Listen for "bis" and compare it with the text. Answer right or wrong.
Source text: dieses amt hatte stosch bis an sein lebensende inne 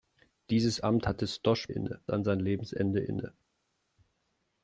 wrong